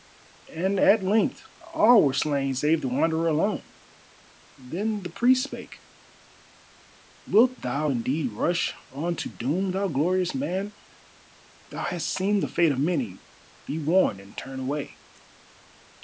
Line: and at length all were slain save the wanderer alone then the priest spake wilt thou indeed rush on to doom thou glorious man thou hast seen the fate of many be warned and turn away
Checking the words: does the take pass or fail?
pass